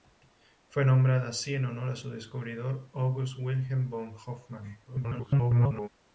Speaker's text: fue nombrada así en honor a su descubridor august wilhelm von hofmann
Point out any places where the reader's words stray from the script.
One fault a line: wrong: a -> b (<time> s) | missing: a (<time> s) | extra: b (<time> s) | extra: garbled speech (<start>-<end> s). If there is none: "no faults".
extra: garbled speech (4.9-5.9 s)